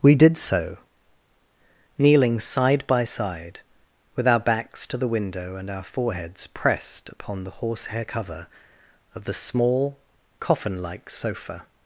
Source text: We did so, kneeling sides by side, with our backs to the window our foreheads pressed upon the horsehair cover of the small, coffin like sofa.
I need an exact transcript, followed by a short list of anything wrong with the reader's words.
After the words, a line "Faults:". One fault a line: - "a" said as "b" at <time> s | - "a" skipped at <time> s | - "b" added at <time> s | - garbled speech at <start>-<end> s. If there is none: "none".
We did so, kneeling side by side, with our backs to the window and our foreheads pressed upon the horsehair cover of the small, coffin like sofa.
Faults:
- "sides" said as "side" at 2.4 s
- "and" added at 5.6 s